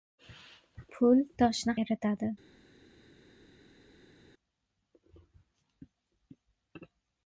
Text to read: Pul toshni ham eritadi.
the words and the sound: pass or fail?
fail